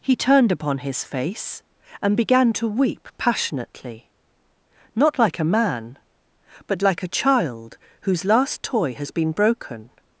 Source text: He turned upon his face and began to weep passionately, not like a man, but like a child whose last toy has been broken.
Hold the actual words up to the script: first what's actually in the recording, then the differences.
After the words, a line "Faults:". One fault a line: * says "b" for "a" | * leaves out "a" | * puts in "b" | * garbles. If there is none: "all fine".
He turned upon his face and began to weep passionately, not like a man, but like a child whose last toy has been broken.
Faults:
all fine